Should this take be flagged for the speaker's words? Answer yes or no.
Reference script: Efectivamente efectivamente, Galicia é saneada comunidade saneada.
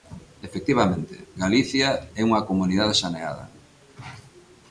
yes